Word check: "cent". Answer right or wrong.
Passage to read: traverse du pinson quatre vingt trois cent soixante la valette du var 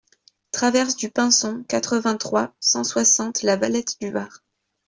right